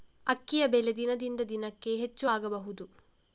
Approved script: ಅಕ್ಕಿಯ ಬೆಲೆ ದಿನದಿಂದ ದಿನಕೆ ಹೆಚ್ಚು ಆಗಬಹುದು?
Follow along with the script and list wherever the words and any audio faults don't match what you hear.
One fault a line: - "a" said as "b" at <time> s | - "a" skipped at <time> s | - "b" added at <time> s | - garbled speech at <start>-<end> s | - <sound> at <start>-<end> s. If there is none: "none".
none